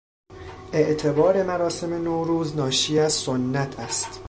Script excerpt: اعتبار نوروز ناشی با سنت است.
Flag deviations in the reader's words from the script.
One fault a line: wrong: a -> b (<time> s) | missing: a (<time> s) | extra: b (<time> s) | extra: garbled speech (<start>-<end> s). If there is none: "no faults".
extra: مراسم (1.4 s)
wrong: با -> از (3.0 s)